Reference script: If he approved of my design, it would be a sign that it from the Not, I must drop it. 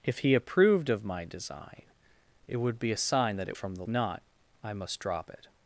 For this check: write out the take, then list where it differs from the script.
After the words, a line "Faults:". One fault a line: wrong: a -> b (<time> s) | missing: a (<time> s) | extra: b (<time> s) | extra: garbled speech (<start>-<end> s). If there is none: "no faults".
If he approved of my design, it would be a sign that it from the Not, I must drop it.
Faults:
no faults